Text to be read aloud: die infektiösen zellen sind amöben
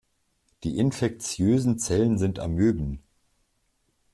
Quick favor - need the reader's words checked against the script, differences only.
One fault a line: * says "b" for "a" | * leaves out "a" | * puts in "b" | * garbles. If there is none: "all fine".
all fine